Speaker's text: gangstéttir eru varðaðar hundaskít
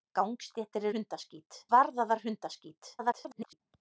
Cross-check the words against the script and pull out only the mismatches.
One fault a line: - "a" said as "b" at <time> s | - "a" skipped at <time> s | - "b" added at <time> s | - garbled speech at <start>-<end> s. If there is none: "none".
- "eru" said as "hundaskít" at 0.9 s
- garbled speech at 3.0-3.6 s